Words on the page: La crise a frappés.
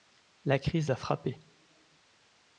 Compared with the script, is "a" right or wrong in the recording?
right